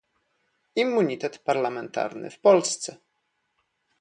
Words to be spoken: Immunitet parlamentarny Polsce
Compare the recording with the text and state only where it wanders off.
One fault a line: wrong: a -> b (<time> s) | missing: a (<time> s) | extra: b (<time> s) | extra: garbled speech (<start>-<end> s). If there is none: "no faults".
extra: w (2.3 s)